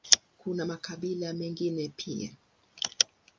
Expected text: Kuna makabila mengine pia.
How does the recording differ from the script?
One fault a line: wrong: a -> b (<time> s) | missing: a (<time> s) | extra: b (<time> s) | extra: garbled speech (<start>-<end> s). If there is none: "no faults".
no faults